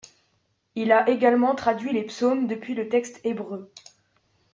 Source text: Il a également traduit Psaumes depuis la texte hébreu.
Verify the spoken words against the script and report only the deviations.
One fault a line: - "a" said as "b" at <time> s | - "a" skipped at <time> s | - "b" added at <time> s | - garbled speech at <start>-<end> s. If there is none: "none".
- "les" added at 1.9 s
- "la" said as "le" at 2.7 s